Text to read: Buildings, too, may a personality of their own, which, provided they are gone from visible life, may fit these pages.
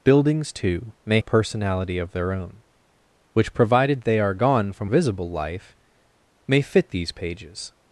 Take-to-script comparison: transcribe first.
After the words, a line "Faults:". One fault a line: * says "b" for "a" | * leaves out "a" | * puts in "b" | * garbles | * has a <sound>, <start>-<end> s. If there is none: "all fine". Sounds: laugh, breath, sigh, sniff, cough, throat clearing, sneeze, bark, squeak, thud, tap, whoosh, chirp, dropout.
Buildings, too, may a personality of their own, which, provided they are gone from visible life, may fit these pages.
Faults:
all fine